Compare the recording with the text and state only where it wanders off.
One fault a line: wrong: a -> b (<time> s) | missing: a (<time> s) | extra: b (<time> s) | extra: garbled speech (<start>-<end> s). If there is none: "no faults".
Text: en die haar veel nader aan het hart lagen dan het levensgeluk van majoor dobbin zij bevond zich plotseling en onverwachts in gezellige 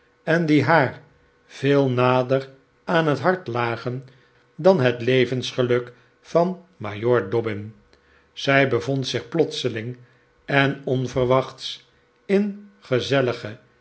no faults